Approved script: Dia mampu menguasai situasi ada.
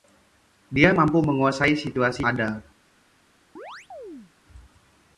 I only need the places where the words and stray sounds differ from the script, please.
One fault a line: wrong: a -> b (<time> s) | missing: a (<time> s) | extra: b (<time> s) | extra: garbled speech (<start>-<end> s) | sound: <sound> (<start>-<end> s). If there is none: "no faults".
sound: chirp (3.6-4.3 s)